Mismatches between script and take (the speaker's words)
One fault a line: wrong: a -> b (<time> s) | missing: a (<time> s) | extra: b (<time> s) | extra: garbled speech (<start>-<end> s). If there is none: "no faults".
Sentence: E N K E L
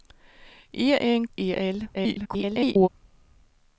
missing: K (1.3 s)
extra: garbled speech (1.9-2.9 s)